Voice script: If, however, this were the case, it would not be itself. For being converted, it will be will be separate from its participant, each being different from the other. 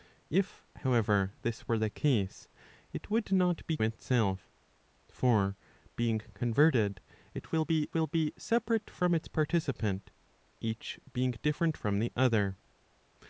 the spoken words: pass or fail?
pass